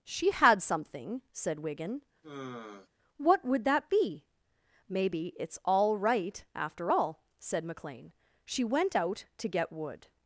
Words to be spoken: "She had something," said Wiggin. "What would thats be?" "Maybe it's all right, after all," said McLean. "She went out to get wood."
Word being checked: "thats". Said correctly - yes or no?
no